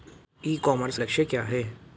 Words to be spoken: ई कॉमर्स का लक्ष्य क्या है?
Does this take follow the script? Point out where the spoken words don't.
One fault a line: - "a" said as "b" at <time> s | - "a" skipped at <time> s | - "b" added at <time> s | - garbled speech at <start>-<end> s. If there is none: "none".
- "का" skipped at 1.0 s